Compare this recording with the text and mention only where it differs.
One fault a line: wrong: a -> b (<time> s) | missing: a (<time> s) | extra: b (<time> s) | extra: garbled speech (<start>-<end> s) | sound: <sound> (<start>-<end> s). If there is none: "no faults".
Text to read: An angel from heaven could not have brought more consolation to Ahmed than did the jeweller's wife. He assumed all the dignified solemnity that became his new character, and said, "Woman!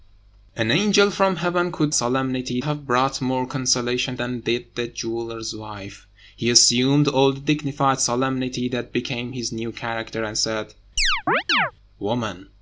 wrong: not -> solemnity (1.9 s)
missing: to Ahmed (4.2 s)
sound: chirp (11.0-11.7 s)